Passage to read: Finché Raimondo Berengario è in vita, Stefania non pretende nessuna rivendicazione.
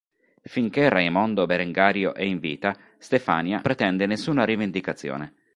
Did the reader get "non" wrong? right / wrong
wrong